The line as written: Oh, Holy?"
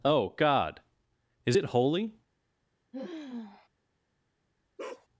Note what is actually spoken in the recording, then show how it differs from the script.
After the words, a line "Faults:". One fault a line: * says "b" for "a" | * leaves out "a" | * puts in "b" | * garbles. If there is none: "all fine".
Oh, God! Is it holy?"
Faults:
* puts in "God Is it"